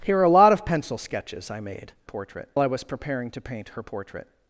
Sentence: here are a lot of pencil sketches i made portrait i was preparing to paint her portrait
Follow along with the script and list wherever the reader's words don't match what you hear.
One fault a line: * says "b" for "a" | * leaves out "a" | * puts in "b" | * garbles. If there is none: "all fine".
all fine